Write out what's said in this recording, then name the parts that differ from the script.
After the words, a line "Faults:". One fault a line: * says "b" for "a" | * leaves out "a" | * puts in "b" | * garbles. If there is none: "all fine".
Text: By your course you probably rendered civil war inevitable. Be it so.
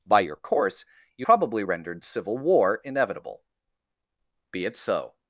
By your course you probably rendered civil war inevitable. Be it so.
Faults:
all fine